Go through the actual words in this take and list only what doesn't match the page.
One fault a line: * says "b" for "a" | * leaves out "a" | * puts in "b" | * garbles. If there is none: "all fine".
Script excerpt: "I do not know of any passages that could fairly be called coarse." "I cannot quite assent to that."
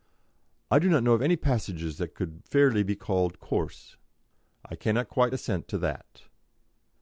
all fine